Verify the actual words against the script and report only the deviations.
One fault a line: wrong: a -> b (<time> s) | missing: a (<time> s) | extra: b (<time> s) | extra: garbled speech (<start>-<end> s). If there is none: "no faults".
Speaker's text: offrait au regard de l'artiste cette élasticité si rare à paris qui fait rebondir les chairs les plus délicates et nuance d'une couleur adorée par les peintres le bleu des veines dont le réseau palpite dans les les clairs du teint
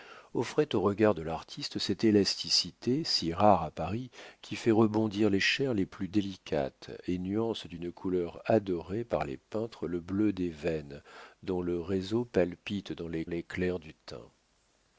no faults